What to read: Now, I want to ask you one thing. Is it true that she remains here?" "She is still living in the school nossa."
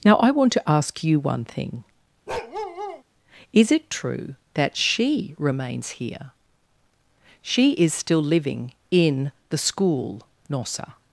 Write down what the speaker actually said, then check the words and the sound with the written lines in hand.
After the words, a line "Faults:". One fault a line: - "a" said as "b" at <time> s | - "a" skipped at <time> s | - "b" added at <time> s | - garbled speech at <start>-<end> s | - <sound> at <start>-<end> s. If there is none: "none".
Now, I want to ask you one thing. Is it true that she remains here?" "She is still living in the school nossa."
Faults:
- bark at 2.3-3.0 s